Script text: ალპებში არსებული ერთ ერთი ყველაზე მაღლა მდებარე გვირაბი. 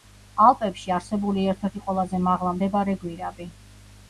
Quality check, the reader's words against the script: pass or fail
pass